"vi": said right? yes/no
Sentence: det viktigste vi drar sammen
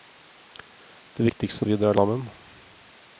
yes